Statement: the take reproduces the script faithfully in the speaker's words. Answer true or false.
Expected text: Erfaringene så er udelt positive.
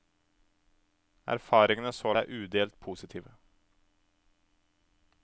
true